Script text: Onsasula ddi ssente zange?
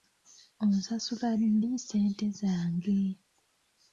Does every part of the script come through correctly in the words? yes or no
yes